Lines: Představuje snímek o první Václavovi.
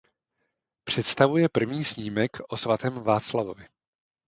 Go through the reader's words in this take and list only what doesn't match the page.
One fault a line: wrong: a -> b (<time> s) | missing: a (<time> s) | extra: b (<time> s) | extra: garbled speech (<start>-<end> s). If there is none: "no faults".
extra: první (1.5 s)
wrong: první -> svatém (2.6 s)